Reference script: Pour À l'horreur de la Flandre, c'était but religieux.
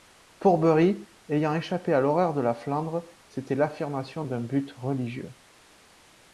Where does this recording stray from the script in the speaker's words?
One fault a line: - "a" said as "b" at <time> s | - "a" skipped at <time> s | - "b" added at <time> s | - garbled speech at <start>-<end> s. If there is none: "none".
- "Bury ayant échappé" added at 0.6 s
- "l'affirmation d'un" added at 3.5 s